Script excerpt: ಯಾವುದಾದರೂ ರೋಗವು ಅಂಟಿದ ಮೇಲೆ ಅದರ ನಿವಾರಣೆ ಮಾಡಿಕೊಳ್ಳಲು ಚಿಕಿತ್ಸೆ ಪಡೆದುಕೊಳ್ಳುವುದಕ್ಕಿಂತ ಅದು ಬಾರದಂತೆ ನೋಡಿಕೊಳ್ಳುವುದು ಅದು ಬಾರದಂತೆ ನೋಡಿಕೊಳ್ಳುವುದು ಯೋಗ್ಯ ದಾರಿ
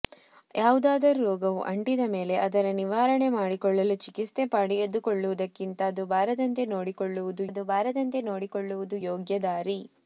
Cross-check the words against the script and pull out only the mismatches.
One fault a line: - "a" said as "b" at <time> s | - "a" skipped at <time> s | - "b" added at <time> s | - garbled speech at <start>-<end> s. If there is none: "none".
none